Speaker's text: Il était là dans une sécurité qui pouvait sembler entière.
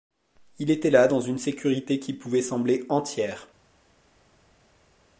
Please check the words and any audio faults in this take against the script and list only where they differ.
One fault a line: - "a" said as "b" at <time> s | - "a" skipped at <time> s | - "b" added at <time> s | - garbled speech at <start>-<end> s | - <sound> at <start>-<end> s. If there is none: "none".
none